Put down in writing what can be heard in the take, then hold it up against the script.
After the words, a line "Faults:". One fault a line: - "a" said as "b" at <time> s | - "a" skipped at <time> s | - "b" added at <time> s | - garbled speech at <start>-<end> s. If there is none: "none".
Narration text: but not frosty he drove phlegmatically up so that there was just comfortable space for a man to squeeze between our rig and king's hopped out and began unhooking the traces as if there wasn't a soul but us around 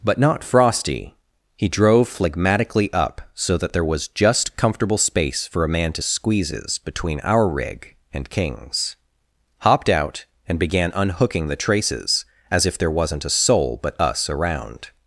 but not frosty he drove phlegmatically up so that there was just comfortable space for a man to squeezes between our rig and king's hopped out and began unhooking the traces as if there wasn't a soul but us around
Faults:
- "squeeze" said as "squeezes" at 6.0 s